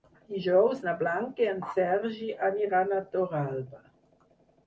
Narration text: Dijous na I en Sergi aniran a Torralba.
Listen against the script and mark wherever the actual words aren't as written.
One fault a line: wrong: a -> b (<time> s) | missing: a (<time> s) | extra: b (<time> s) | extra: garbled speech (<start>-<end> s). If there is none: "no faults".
extra: Blanca (1.0 s)